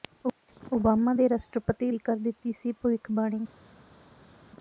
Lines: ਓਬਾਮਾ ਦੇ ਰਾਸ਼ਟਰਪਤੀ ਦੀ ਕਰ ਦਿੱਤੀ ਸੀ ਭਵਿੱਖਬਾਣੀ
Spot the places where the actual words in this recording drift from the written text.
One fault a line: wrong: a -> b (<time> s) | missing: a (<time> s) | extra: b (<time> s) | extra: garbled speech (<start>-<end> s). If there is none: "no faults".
no faults